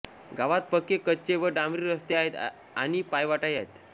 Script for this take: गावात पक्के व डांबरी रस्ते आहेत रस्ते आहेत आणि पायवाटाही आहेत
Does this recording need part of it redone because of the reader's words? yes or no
yes